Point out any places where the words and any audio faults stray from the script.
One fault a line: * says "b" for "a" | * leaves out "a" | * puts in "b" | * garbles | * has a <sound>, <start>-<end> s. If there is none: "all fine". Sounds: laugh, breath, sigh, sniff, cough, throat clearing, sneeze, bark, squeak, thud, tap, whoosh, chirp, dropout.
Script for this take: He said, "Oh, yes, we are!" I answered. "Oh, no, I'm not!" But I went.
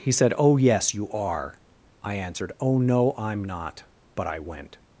* says "you" for "we"